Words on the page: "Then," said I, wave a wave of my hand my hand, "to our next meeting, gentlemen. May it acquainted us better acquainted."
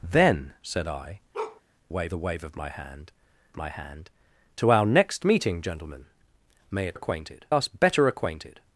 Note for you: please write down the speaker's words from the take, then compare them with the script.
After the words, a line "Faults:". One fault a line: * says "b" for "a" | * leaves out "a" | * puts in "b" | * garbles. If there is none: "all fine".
"Then," said I, wave a wave of my hand my hand, "to our next meeting, gentlemen. May it acquainted us better acquainted."
Faults:
all fine